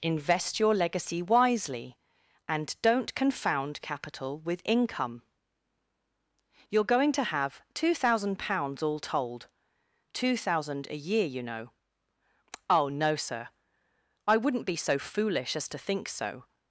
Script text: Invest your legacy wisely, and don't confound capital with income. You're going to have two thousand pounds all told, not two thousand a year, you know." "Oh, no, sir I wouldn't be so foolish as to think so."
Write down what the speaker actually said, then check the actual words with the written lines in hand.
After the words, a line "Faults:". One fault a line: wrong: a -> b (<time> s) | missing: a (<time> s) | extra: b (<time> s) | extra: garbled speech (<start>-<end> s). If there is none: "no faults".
Invest your legacy wisely, and don't confound capital with income. You're going to have two thousand pounds all told, two thousand a year, you know." "Oh, no, sir I wouldn't be so foolish as to think so."
Faults:
missing: not (9.5 s)